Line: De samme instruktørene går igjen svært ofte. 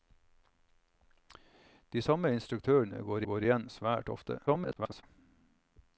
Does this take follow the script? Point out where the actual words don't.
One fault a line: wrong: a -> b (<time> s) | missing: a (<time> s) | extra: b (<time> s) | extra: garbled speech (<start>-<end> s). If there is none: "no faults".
extra: går (3.3 s)
extra: garbled speech (4.5-5.0 s)